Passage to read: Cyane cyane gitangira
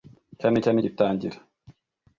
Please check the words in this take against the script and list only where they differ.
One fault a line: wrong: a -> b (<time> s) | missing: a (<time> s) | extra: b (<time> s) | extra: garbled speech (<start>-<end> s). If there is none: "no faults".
no faults